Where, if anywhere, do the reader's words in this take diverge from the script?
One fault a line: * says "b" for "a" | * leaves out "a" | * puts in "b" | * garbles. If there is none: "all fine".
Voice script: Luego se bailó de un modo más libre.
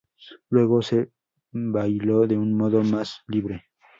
all fine